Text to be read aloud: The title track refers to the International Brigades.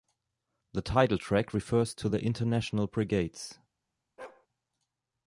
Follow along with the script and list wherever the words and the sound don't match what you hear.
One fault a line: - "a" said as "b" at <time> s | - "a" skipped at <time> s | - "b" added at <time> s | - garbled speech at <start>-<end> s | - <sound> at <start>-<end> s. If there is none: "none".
- bark at 4.2-4.5 s